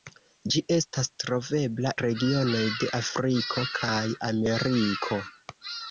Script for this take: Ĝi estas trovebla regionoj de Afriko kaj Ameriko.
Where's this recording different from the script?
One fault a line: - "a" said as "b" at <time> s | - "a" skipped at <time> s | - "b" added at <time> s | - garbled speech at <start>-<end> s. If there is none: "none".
none